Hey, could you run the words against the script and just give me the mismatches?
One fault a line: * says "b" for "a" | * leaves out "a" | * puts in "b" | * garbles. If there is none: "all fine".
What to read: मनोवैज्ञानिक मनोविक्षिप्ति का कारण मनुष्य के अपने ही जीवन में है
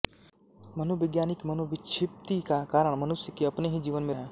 all fine